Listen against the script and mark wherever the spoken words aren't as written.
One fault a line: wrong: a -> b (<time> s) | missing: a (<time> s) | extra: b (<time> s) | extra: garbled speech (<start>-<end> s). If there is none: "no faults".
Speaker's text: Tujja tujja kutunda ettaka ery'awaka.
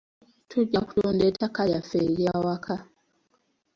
missing: tujja (0.8 s)
extra: lyaffe (1.7 s)